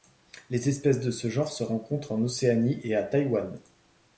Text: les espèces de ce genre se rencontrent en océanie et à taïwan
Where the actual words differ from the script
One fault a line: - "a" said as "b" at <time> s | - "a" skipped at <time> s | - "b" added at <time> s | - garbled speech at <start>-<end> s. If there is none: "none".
none